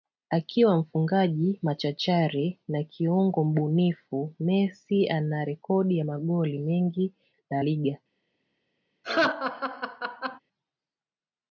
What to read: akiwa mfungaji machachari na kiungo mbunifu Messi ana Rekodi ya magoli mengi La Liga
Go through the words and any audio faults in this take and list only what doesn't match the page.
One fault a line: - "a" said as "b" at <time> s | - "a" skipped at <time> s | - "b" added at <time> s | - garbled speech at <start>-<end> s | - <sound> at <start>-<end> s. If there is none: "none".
- laugh at 9.0-10.4 s